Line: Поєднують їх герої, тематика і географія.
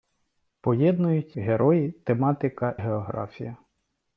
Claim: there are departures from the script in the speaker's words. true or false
true